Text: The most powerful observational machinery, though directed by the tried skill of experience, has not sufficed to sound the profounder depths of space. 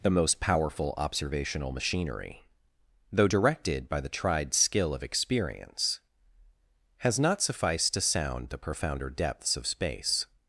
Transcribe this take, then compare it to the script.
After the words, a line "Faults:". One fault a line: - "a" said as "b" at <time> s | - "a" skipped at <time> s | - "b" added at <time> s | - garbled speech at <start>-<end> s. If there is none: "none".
The most powerful observational machinery, though directed by the tried skill of experience, has not sufficed to sound the profounder depths of space.
Faults:
none